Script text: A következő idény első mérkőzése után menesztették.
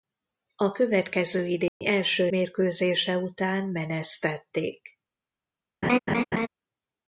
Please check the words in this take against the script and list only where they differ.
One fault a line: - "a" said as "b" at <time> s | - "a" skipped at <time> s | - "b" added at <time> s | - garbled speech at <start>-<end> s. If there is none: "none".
none